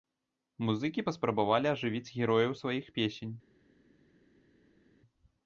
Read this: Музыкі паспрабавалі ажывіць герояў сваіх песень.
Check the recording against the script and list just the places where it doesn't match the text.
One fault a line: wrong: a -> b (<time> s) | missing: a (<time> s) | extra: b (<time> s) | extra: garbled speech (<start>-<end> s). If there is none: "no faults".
no faults